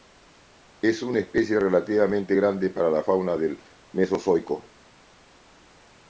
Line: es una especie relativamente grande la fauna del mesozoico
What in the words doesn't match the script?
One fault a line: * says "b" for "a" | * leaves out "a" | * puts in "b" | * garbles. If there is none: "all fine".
* puts in "para"